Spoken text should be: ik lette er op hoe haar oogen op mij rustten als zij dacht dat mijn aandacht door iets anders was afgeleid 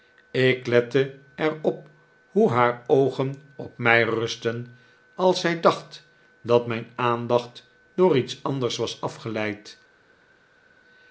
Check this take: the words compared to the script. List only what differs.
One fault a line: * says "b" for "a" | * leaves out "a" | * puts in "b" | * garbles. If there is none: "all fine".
all fine